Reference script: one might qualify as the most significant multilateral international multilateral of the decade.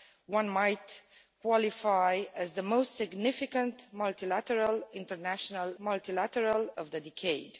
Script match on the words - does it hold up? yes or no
yes